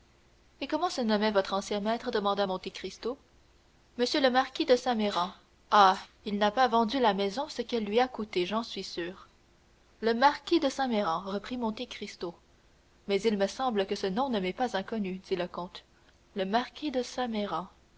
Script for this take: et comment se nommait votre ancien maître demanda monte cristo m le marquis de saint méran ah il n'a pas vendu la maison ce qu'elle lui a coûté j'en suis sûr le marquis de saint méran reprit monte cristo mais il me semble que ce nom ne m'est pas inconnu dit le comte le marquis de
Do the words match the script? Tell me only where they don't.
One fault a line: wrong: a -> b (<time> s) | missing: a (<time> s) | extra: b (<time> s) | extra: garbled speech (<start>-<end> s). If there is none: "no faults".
no faults